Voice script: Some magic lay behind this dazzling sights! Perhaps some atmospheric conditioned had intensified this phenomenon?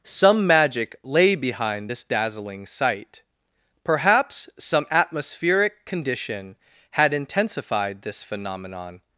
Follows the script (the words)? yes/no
no